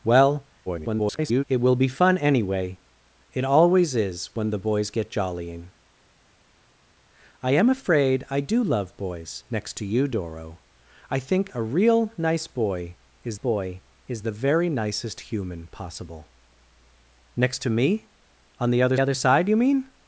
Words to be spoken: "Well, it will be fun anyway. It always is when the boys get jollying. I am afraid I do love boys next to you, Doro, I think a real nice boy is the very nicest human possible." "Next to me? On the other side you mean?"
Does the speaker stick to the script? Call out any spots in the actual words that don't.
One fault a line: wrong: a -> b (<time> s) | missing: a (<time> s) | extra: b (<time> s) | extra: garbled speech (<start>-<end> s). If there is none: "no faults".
extra: garbled speech (0.7-1.4 s)
extra: boy is (13.3 s)
extra: other (19.0 s)